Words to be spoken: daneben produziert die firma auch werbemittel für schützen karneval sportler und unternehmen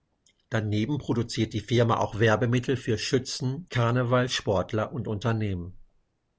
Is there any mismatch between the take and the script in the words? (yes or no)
no